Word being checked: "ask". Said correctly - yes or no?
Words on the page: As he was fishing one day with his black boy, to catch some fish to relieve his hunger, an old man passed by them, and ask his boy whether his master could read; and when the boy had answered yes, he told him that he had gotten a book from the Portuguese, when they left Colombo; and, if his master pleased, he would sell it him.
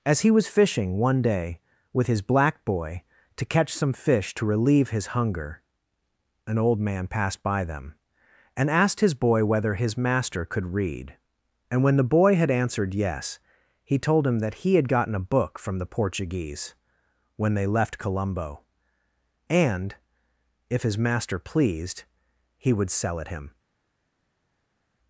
no